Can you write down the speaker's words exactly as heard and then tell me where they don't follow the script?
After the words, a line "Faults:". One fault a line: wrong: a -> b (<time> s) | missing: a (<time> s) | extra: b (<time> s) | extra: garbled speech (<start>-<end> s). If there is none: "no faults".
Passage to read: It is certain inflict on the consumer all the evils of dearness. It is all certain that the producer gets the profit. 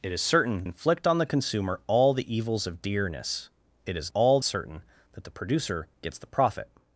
It is certain inflict on the consumer all the evils of dearness. It is all certain that the producer gets the profit.
Faults:
no faults